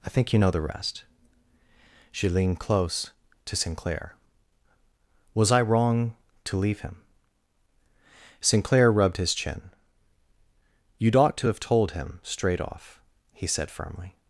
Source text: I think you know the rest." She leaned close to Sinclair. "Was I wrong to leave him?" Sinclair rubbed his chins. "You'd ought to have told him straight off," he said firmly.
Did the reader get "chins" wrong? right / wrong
wrong